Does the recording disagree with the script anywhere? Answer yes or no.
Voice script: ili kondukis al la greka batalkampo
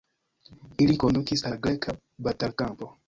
yes